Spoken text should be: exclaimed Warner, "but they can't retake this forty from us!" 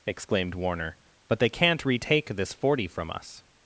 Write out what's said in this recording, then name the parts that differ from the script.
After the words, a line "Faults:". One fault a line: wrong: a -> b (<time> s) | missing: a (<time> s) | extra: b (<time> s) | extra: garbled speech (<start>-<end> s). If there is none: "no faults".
exclaimed Warner, "but they can't retake this forty from us!"
Faults:
no faults